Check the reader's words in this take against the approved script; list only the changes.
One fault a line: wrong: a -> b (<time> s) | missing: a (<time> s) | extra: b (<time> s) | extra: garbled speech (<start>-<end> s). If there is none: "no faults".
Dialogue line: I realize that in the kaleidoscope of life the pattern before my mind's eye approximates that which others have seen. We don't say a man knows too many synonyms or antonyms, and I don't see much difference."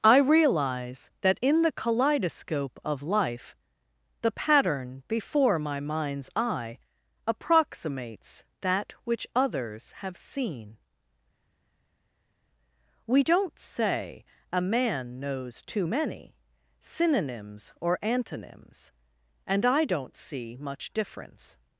no faults